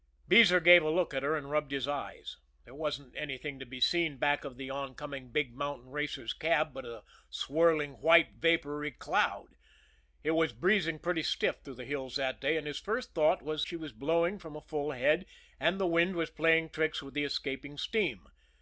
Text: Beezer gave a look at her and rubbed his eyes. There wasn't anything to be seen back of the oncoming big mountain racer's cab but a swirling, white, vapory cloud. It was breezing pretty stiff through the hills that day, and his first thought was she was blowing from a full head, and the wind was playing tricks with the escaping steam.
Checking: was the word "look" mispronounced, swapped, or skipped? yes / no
no